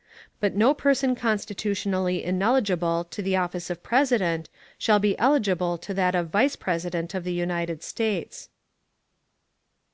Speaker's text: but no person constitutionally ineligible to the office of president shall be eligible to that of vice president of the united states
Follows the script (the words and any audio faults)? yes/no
yes